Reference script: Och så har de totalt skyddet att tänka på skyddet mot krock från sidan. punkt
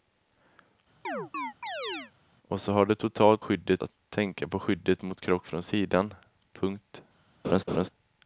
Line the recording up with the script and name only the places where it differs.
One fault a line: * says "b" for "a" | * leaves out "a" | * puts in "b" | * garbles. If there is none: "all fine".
all fine